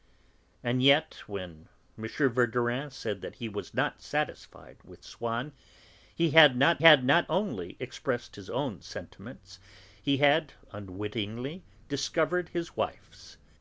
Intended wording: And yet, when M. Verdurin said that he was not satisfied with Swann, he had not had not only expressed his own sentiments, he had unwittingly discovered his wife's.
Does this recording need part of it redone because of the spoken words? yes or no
no